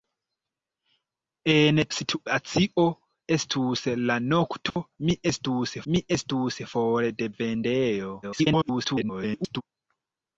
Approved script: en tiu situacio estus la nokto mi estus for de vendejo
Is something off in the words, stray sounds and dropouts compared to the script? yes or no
yes